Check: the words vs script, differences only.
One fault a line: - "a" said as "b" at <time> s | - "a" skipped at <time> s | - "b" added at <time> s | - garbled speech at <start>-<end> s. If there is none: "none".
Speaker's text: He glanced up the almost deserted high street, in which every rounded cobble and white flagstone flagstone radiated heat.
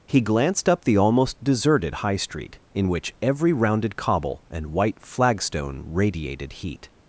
- "flagstone" skipped at 5.8 s